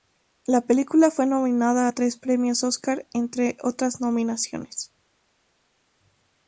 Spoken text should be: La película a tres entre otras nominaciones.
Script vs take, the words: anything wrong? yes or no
yes